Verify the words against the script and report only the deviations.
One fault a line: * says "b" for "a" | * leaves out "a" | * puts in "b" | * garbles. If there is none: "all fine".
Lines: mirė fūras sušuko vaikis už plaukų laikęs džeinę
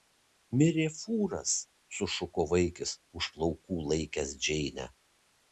all fine